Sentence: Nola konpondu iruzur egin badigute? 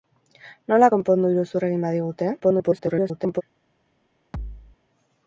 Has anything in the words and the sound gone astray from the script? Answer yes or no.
yes